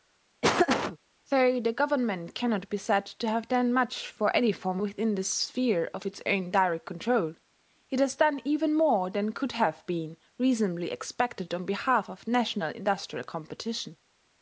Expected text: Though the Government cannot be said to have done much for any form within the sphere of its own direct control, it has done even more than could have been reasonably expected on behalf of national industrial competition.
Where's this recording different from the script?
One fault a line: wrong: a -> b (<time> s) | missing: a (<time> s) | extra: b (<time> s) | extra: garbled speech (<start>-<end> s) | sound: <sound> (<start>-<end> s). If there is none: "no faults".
sound: laugh (0.4-1.0 s)